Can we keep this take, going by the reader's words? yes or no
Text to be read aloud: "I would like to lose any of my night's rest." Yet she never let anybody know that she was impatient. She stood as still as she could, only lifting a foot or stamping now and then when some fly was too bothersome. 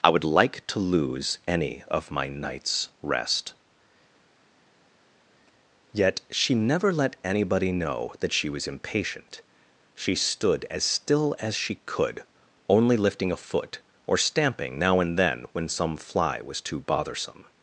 yes